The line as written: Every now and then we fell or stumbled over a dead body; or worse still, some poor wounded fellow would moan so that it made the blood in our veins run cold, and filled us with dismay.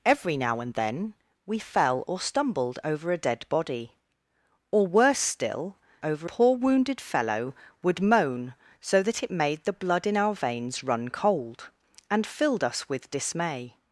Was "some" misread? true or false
true